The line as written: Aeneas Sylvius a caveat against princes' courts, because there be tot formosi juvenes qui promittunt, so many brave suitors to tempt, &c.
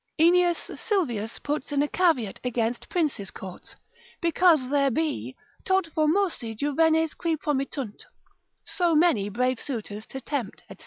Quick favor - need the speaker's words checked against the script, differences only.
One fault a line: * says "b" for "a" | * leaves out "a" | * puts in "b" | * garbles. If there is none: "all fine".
* puts in "puts in"